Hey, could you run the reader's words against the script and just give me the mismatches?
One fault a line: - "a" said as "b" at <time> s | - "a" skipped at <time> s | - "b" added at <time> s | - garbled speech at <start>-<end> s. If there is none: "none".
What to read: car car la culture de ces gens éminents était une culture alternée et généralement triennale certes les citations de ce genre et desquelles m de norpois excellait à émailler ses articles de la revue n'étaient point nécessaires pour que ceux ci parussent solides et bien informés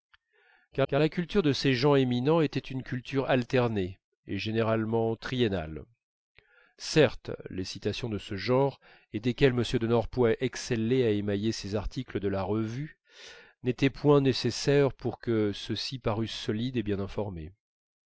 none